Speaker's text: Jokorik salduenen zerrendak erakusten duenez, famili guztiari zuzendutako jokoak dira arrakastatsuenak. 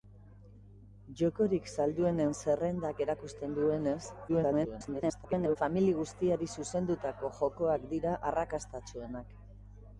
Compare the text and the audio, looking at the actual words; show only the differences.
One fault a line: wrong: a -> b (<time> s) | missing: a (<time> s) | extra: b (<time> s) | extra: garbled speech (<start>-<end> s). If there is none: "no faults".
extra: garbled speech (4.3-5.6 s)